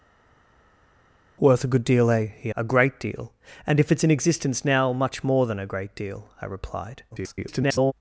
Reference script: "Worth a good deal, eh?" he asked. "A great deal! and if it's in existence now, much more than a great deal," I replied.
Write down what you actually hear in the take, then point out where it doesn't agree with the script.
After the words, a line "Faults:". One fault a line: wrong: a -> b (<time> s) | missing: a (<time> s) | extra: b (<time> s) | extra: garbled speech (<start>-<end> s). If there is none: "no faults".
"Worth a good deal, eh?" he. "A great deal! and if it's in existence now, much more than a great deal," I replied. [garbled]
Faults:
missing: asked (2.5 s)
extra: garbled speech (7.1-7.9 s)